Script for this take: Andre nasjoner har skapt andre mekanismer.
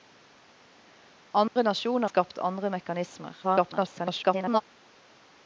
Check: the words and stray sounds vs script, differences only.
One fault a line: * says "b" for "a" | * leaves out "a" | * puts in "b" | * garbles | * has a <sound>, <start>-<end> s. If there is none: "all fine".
* has a dropout, 1.5-1.6 s
* leaves out "har"
* garbles